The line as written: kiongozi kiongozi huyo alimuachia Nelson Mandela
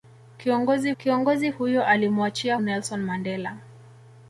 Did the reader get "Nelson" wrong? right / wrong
right